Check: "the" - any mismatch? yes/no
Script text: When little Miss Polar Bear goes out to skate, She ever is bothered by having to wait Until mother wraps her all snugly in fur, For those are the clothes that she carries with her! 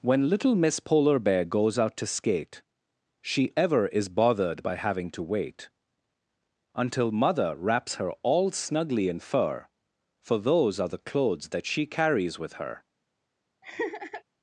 no